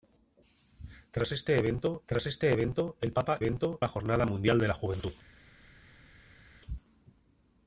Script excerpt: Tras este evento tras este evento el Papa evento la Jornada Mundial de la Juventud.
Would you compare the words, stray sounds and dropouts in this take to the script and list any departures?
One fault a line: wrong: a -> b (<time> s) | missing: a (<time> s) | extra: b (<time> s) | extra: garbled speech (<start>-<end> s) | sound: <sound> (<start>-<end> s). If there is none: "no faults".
no faults